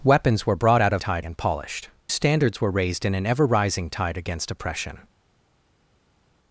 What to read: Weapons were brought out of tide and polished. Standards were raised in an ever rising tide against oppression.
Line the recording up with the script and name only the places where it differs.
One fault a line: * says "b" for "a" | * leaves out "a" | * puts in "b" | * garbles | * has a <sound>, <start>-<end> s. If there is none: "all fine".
all fine